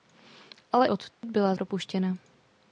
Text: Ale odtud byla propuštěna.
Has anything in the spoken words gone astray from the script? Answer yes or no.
no